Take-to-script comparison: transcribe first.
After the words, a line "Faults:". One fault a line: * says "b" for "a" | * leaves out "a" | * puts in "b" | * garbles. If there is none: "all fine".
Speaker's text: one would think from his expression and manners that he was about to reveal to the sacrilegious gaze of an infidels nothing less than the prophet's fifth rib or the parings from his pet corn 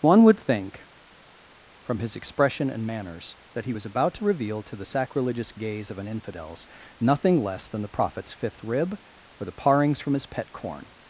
one would think from his expression and manners that he was about to reveal to the sacrilegious gaze of an infidels nothing less than the prophet's fifth rib or the parings from his pet corn
Faults:
all fine